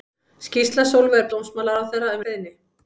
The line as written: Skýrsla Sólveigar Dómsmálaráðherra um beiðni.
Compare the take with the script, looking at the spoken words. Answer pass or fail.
pass